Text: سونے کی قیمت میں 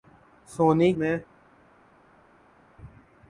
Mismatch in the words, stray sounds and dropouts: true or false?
true